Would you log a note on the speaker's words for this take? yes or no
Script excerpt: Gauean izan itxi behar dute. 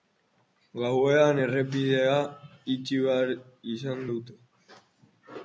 yes